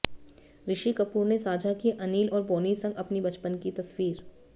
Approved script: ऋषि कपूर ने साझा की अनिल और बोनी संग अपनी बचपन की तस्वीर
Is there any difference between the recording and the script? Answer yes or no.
no